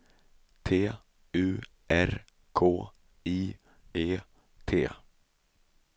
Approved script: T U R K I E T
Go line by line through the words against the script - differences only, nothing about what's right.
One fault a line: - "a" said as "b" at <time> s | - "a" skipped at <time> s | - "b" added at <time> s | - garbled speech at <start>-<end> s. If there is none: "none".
none